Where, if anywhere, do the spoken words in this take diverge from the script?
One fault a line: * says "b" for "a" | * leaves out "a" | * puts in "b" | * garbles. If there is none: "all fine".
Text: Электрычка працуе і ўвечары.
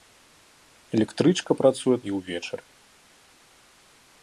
all fine